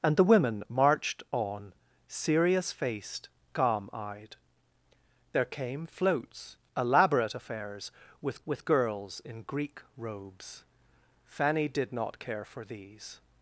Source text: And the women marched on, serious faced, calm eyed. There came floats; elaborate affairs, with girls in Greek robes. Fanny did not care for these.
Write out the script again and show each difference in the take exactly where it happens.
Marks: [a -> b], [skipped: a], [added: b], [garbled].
And the women marched on, serious faced, calm eyed. There came floats; elaborate affairs, with [added: with] girls in Greek robes. Fanny did not care for these.